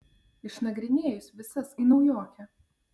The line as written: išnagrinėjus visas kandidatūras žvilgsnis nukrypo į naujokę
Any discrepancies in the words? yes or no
yes